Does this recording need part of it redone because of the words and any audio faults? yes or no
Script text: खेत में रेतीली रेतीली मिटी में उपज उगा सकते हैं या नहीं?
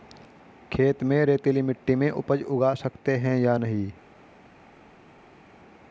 yes